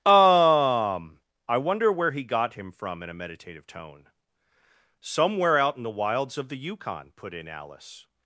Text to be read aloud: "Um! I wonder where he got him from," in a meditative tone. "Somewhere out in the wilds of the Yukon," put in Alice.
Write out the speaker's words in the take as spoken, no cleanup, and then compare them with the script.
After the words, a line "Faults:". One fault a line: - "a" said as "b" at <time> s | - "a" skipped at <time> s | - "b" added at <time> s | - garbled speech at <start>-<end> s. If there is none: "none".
"Um! I wonder where he got him from," in a meditative tone. "Somewhere out in the wilds of the Yukon," put in Alice.
Faults:
none